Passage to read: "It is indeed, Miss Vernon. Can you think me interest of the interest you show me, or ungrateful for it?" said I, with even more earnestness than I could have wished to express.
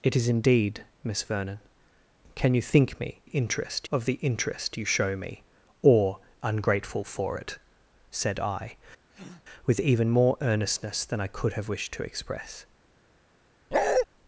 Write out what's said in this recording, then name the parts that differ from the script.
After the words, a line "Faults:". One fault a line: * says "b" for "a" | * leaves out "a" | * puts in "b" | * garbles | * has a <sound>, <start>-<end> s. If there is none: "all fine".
"It is indeed, Miss Vernon. Can you think me interest of the interest you show me, or ungrateful for it?" said I, with even more earnestness than I could have wished to express.
Faults:
* has a breath, 9.1-9.4 s
* has a bark, 13.7-14.1 s